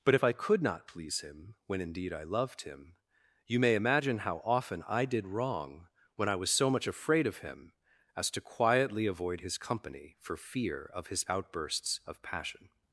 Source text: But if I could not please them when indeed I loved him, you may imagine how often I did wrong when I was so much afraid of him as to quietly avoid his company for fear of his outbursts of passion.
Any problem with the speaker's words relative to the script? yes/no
yes